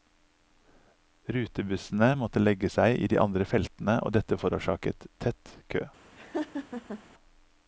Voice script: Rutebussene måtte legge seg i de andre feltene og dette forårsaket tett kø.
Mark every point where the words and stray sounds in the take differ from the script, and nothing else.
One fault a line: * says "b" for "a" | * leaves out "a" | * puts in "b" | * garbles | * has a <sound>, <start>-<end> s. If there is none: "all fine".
* has a laugh, 6.2-7.0 s